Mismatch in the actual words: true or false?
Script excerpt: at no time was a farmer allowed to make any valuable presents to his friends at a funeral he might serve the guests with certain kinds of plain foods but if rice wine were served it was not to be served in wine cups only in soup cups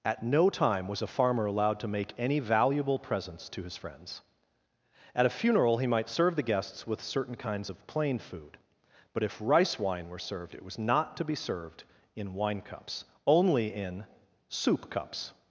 true